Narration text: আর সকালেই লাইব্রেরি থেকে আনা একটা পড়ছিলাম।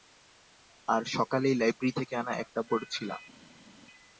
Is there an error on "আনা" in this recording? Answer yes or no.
no